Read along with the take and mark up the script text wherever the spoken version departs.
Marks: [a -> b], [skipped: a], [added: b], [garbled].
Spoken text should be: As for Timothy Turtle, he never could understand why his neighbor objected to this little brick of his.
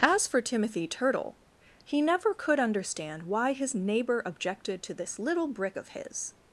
As for Timothy Turtle, he never could understand why his neighbor objected to this little brick of his.